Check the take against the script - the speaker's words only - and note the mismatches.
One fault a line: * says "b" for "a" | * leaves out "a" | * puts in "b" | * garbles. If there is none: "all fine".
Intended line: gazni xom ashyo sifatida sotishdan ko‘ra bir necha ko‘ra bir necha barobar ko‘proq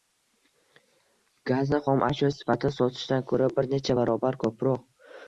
* leaves out "ko‘ra bir necha"